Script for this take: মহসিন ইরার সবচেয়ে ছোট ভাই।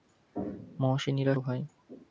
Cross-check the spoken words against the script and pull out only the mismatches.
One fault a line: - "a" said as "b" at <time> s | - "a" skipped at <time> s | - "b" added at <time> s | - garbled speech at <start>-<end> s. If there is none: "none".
- "সবচেয়ে ছোট" skipped at 1.4 s